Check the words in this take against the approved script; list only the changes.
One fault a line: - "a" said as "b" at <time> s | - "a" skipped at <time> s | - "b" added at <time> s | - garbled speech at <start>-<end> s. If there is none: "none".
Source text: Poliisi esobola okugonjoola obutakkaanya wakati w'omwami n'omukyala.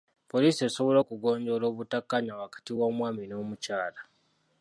none